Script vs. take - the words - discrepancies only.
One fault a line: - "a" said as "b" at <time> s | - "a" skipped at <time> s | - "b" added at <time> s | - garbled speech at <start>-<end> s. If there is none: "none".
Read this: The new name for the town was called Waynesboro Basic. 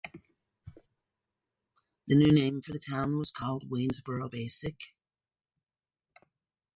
none